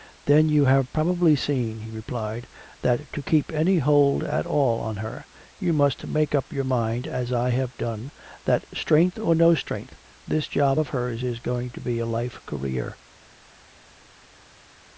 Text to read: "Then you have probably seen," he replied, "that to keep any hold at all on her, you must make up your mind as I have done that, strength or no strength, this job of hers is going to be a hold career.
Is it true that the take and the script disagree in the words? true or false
true